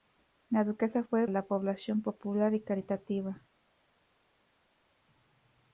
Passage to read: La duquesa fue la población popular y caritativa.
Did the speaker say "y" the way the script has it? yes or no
yes